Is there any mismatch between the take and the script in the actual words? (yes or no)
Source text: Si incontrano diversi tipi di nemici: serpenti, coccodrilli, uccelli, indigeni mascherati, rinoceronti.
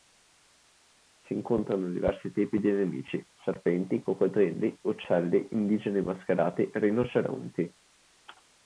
no